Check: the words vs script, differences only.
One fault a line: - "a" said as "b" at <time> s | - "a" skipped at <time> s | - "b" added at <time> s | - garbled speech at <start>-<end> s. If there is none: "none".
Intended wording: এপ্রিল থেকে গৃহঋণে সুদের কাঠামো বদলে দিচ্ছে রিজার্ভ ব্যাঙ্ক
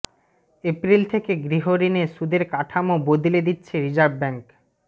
none